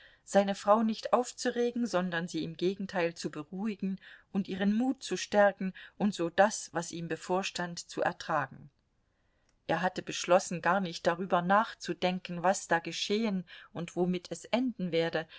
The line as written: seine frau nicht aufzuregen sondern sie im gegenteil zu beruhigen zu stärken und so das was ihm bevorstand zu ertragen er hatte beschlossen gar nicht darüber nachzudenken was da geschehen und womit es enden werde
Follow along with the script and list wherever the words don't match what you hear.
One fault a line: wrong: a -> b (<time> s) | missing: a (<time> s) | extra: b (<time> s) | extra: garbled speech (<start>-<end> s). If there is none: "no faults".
extra: und ihren mut (4.3 s)